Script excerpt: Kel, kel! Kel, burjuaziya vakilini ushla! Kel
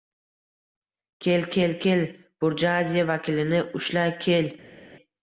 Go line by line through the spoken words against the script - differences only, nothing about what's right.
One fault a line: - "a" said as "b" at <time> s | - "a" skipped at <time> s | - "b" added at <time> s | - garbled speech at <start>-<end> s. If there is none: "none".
none